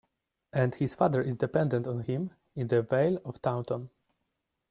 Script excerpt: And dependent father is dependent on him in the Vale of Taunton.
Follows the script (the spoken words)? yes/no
no